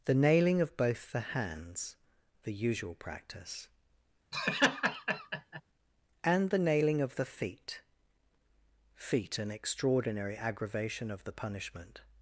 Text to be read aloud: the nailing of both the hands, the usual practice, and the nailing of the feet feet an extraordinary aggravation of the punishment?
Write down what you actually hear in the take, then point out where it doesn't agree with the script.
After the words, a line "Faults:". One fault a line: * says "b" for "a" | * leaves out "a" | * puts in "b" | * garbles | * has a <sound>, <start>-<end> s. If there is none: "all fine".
the nailing of both the hands, the usual practice, and the nailing of the feet feet an extraordinary aggravation of the punishment?
Faults:
* has a laugh, 4.3-5.6 s